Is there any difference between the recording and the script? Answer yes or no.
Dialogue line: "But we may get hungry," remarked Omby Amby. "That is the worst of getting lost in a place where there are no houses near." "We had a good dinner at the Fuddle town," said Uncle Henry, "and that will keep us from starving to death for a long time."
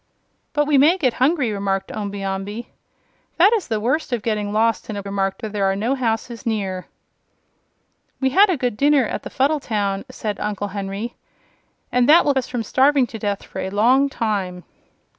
yes